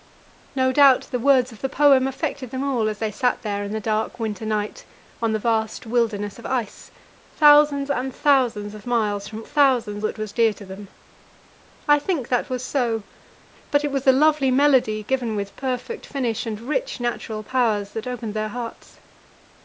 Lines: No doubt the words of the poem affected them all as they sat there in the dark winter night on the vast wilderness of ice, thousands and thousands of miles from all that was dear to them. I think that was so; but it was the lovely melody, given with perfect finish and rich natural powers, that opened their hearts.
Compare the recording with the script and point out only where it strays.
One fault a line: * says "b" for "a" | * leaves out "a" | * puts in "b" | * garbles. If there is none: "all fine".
* says "thousands" for "all"